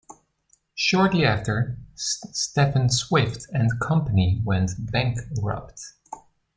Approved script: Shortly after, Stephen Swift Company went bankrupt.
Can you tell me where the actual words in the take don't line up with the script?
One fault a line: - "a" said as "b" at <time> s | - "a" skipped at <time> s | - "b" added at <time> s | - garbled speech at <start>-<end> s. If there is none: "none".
- "and" added at 3.5 s